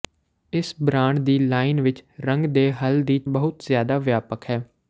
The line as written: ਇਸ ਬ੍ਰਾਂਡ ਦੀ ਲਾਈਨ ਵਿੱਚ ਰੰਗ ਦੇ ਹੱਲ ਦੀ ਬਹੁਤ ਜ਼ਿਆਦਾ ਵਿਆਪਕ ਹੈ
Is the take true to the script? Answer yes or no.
yes